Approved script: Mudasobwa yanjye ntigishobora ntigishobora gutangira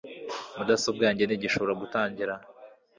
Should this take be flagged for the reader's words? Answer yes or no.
yes